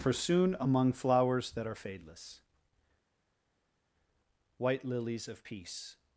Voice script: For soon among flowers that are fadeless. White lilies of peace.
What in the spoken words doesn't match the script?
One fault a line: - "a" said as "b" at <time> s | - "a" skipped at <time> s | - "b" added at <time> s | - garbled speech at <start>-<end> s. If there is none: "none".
none